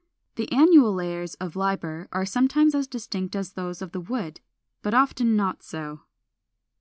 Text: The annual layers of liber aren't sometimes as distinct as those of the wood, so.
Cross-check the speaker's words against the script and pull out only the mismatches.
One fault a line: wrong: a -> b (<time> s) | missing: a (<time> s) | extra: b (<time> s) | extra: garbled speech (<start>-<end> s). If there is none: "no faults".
wrong: aren't -> are (2.1 s)
extra: but often not (4.8 s)